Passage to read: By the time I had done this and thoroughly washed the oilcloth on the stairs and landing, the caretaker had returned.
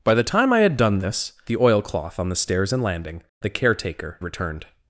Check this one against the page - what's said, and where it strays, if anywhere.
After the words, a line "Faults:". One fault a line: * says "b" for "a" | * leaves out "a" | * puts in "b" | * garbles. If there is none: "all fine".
By the time I had done this the oilcloth on the stairs and landing, the caretaker returned.
Faults:
* leaves out "and thoroughly washed"
* leaves out "had"